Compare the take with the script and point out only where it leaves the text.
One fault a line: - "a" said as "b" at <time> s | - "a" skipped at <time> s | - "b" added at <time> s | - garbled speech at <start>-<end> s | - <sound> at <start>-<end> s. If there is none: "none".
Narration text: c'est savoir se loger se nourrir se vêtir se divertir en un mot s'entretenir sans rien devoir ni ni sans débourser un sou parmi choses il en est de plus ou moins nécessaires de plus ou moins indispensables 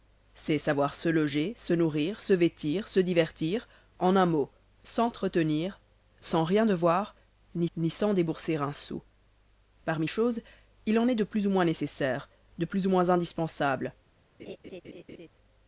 - laugh at 14.4-15.3 s